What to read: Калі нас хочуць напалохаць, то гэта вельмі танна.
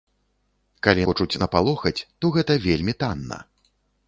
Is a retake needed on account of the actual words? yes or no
yes